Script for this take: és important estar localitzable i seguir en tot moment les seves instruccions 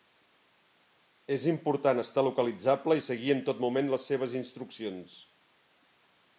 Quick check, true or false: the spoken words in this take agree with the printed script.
true